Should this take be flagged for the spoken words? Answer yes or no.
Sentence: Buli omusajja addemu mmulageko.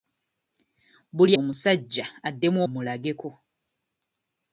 no